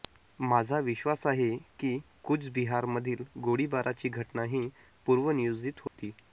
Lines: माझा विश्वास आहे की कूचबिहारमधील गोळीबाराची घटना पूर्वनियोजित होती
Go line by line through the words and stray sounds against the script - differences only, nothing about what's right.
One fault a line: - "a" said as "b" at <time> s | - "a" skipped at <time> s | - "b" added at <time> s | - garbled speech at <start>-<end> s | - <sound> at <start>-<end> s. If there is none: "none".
- "ही" added at 4.5 s
- dropout at 5.9-6.0 s